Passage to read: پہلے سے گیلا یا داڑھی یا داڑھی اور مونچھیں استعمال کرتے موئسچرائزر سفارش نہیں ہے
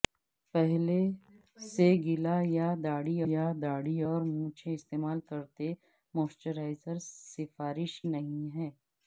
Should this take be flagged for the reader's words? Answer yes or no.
no